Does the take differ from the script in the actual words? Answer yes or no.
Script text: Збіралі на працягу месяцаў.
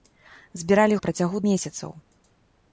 no